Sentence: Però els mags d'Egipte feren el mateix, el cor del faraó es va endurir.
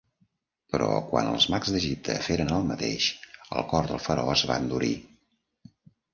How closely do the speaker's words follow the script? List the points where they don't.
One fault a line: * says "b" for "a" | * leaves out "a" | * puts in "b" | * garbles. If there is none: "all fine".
* puts in "quan"